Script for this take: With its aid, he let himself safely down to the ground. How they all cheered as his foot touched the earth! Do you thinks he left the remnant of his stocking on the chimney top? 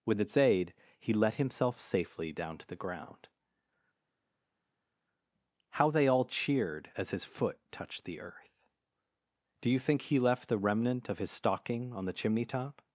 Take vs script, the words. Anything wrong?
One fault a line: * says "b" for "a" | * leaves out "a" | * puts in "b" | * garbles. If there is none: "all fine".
* says "think" for "thinks"